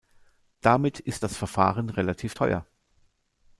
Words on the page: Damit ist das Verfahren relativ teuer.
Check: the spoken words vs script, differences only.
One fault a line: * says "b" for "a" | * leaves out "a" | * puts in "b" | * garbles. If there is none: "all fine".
all fine